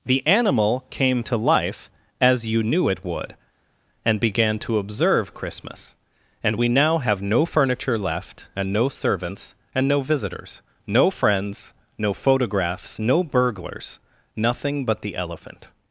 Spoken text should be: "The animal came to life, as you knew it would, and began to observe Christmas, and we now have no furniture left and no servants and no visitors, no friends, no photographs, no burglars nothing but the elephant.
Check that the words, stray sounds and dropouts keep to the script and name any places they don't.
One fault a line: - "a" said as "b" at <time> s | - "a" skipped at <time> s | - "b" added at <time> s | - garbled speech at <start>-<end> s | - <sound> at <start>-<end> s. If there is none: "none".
none